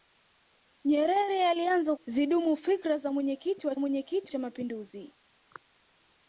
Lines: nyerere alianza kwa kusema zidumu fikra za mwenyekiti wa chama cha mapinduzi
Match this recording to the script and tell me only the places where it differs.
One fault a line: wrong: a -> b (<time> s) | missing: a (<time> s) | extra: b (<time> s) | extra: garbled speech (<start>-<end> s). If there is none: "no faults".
missing: kwa kusema (1.9 s)
wrong: chama -> mwenyekiti (3.8 s)